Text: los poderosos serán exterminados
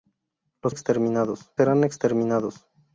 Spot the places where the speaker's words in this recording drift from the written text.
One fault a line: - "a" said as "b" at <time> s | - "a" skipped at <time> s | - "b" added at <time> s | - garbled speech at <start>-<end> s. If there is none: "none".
- "poderosos" said as "exterminados" at 0.7 s